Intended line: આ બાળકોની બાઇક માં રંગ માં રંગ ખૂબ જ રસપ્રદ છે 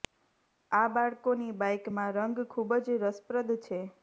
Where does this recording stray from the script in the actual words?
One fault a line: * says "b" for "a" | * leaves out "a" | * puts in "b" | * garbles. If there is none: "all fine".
* leaves out "માં રંગ"